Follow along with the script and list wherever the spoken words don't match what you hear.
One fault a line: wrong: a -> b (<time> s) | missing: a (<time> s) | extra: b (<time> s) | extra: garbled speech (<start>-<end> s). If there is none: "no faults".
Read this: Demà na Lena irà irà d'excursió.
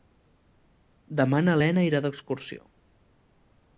missing: irà (2.0 s)